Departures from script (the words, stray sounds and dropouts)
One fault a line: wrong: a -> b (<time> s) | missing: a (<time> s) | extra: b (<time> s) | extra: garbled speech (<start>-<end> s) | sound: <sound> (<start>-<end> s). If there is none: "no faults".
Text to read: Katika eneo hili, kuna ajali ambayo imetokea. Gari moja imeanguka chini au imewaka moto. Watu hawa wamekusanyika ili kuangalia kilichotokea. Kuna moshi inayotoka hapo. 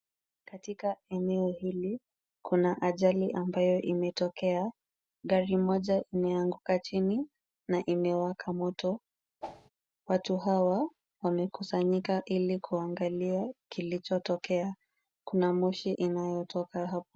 wrong: au -> na (7.7 s)
sound: whoosh (9.4-9.7 s)